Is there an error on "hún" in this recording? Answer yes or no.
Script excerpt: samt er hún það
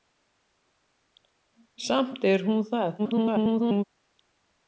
no